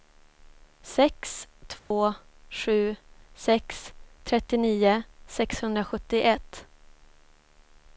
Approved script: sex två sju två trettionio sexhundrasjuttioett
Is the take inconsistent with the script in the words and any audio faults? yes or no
yes